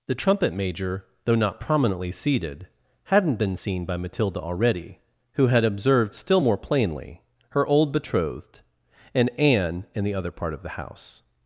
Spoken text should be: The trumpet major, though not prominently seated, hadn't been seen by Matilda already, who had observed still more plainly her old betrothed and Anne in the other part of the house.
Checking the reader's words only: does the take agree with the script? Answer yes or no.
yes